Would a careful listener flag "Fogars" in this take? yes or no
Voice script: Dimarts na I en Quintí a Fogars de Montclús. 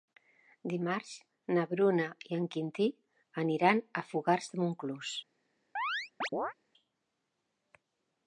no